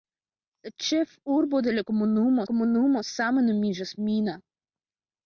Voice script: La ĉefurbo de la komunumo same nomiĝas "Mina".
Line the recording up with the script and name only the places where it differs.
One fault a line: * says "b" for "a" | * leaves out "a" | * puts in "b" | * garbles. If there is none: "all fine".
* puts in "komunumo"